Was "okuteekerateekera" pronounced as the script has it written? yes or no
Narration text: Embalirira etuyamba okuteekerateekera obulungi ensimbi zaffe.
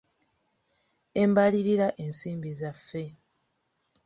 no